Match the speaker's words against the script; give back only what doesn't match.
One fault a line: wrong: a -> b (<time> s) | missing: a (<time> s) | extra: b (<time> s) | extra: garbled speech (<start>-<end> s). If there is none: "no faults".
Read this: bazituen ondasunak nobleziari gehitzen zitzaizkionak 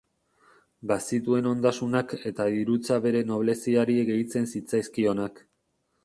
extra: eta dirutza bere (2.3 s)